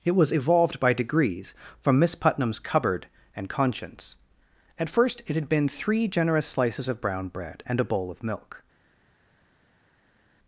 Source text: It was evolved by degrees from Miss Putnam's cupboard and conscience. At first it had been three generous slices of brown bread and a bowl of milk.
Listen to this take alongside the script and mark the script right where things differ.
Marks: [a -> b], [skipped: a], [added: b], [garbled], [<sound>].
It was evolved by degrees from Miss Putnam's cupboard and conscience. At first it had been three generous slices of brown bread and a bowl of milk.